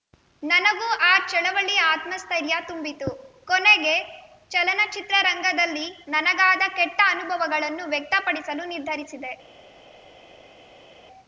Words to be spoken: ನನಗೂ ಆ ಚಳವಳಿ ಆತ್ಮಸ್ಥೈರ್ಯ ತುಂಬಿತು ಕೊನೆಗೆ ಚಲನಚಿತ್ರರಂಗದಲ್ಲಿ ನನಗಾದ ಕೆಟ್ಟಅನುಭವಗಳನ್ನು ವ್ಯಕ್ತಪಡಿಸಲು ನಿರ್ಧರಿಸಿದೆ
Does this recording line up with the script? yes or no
yes